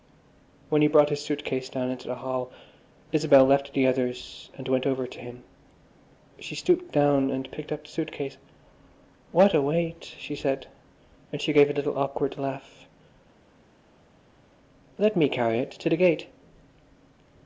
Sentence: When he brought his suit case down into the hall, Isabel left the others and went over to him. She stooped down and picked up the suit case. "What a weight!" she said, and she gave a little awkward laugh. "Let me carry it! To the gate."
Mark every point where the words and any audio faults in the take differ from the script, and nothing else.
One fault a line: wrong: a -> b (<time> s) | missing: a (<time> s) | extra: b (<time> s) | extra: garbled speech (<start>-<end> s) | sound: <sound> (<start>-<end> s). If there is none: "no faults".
no faults